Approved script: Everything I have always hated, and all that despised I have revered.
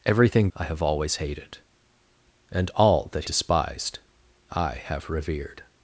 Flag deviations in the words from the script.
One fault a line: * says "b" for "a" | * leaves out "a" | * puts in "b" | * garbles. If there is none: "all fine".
all fine